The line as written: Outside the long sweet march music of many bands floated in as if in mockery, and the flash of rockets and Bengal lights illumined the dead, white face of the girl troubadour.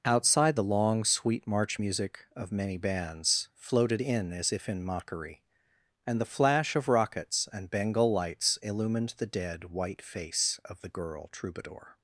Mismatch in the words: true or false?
false